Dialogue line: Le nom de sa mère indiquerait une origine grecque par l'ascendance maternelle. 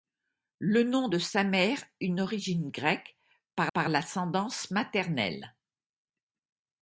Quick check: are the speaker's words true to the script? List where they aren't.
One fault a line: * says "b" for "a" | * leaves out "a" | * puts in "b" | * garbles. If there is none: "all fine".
* leaves out "indiquerait"
* puts in "par"